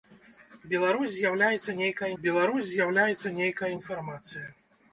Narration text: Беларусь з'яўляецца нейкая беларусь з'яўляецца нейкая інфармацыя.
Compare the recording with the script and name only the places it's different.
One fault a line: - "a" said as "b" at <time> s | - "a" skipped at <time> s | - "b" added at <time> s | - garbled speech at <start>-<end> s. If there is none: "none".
none